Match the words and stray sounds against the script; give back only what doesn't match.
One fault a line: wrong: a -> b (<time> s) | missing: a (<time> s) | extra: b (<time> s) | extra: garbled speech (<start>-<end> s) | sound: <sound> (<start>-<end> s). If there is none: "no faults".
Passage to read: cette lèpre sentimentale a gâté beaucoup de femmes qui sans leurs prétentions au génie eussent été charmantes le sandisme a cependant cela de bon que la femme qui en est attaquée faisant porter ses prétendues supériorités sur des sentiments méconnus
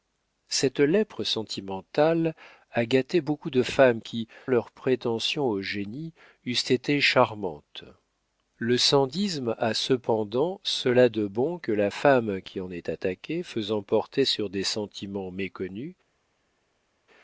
missing: sans (4.3 s)
missing: ses prétendues supériorités (14.2 s)